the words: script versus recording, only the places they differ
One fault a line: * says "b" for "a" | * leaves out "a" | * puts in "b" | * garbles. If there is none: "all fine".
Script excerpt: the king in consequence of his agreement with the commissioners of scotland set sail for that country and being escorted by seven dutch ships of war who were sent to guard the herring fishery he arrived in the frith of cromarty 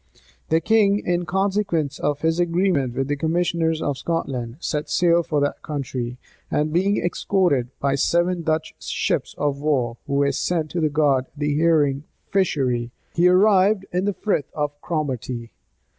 all fine